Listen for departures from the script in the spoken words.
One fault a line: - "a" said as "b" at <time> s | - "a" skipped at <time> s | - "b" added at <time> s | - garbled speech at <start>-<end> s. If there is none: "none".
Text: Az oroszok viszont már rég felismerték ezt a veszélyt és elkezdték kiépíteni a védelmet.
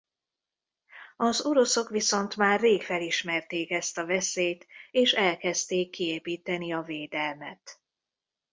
none